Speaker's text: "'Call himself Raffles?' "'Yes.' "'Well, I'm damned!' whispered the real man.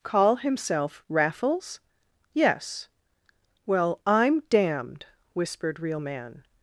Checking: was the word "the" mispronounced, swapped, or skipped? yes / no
yes